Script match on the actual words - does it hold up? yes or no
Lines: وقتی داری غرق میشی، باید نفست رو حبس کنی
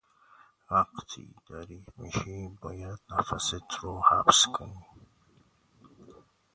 no